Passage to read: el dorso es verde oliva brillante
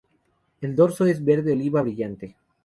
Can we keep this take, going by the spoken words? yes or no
yes